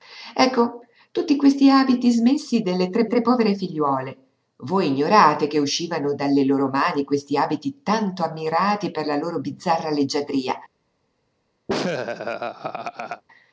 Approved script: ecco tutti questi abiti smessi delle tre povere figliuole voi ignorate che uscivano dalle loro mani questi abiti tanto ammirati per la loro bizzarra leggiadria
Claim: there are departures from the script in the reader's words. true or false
true